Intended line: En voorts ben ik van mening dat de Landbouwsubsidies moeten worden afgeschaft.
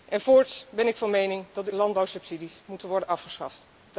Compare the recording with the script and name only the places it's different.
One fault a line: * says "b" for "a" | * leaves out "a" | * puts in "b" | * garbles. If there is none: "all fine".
all fine